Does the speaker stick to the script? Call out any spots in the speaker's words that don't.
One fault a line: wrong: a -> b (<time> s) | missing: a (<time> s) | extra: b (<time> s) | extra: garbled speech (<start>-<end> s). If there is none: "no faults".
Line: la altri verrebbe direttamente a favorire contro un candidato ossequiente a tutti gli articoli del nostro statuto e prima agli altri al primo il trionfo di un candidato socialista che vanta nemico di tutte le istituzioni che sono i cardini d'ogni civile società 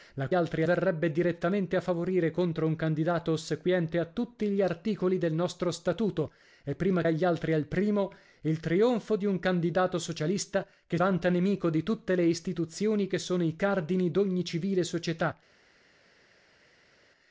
no faults